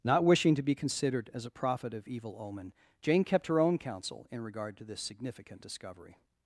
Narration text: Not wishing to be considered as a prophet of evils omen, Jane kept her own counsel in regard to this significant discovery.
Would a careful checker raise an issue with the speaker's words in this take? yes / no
yes